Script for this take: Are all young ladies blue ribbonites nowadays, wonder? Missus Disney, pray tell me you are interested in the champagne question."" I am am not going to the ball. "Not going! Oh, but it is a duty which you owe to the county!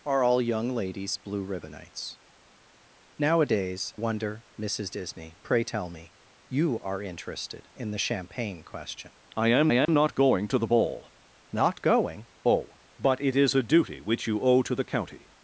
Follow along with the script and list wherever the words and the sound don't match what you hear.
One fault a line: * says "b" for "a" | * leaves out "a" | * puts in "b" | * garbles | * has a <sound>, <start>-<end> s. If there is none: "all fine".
* has a dropout, 9.9-9.9 s